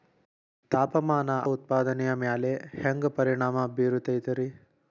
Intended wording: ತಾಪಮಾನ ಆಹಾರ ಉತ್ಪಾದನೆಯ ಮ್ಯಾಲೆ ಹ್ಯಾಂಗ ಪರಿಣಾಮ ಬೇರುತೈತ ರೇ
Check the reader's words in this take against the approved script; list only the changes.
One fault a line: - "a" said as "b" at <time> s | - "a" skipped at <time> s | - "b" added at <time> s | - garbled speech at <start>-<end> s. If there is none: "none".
- "ಆಹಾರ" skipped at 1.3 s